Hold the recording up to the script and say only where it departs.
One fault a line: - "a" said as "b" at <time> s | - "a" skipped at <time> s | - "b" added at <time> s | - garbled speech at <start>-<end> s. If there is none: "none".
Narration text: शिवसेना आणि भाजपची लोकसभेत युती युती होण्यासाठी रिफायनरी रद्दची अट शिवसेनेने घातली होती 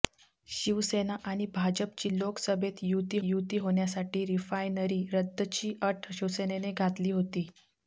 none